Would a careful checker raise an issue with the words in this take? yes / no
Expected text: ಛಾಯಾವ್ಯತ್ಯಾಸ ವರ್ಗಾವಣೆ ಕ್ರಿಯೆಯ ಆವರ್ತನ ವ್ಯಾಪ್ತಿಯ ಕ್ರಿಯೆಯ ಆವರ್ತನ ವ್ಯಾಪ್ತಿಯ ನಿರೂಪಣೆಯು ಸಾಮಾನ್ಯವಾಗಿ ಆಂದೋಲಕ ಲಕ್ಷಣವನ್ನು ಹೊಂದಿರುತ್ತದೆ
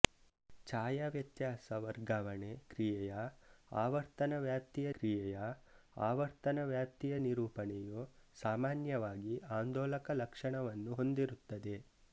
no